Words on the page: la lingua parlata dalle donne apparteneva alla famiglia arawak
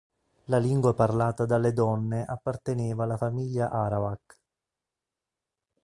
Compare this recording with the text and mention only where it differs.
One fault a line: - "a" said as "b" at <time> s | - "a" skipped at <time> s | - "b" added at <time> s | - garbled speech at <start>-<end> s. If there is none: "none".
none